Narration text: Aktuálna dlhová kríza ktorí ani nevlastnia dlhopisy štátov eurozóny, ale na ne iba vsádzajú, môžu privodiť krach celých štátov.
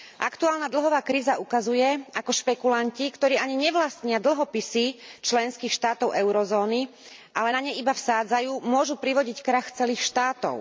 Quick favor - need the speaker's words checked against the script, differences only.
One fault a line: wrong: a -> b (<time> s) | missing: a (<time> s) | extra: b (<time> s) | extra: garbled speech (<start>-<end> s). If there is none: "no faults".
extra: ukazuje ako špekulanti (1.4 s)
extra: členských (5.2 s)